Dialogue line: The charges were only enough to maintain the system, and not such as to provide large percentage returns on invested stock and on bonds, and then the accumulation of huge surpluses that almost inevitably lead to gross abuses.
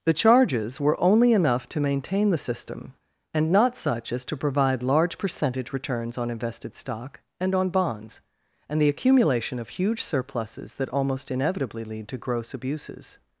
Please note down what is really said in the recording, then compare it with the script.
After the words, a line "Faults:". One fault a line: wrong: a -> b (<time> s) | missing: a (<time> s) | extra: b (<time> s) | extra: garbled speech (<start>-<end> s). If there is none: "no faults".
The charges were only enough to maintain the system, and not such as to provide large percentage returns on invested stock and on bonds, and the accumulation of huge surpluses that almost inevitably lead to gross abuses.
Faults:
missing: then (8.8 s)